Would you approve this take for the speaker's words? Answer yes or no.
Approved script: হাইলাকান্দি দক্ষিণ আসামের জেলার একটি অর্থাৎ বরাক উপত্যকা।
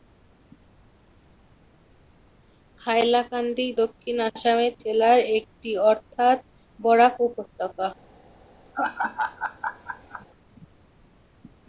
yes